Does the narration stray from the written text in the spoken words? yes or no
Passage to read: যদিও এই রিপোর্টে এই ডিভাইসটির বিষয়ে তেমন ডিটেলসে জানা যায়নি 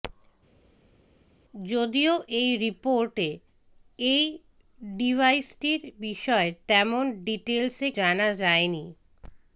no